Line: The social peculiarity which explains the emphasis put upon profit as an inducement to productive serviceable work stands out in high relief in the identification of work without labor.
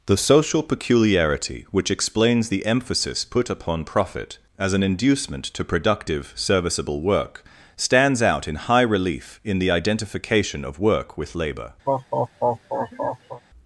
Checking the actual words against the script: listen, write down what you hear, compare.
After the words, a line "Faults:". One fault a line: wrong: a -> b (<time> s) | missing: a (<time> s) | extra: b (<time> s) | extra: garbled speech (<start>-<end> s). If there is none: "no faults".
The social peculiarity which explains the emphasis put upon profit as an inducement to productive serviceable work stands out in high relief in the identification of work with labor.
Faults:
wrong: without -> with (11.2 s)